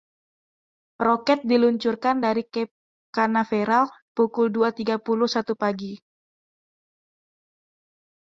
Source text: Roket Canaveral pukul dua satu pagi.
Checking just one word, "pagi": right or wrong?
right